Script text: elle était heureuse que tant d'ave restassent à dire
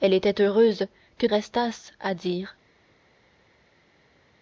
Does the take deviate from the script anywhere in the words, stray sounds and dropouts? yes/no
yes